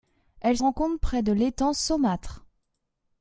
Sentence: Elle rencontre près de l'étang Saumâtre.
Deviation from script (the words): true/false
false